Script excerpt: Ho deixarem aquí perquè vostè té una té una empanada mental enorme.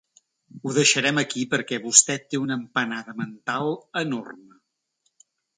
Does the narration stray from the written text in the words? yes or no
yes